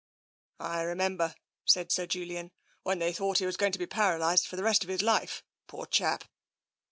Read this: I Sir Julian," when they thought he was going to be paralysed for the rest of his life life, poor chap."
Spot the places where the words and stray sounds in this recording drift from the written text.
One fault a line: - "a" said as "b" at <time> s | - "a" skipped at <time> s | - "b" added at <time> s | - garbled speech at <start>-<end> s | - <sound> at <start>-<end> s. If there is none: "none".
- "remember said" added at 0.8 s
- "life" skipped at 5.4 s